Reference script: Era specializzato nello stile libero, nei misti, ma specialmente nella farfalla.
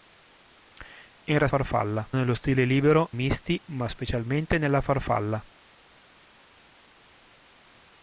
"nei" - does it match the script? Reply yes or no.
no